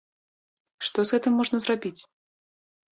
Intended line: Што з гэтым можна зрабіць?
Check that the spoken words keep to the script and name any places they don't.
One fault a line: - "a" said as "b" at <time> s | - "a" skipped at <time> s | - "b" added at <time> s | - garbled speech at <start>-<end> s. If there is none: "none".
none